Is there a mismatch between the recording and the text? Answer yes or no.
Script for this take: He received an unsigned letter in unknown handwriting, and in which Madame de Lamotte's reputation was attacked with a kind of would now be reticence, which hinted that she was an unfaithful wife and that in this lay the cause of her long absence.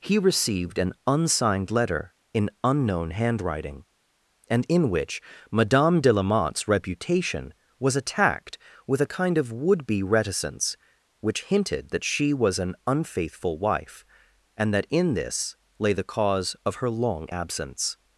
yes